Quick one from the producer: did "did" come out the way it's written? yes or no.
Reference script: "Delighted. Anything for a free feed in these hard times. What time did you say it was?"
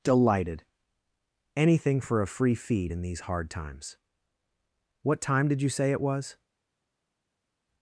yes